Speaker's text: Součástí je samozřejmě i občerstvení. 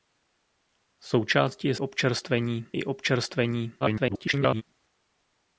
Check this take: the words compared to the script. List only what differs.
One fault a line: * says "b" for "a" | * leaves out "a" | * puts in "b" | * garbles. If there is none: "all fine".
* says "občerstvení" for "samozřejmě"
* garbles